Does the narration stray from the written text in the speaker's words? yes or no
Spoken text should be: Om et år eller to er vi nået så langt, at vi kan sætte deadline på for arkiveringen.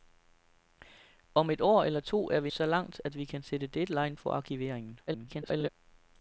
yes